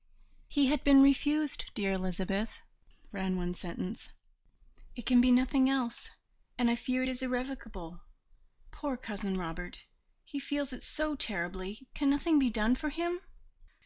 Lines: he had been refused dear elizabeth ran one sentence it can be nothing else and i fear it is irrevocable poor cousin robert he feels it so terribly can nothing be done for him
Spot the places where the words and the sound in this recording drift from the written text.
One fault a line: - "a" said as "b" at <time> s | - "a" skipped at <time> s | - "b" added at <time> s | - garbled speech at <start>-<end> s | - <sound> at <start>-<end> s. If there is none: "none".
none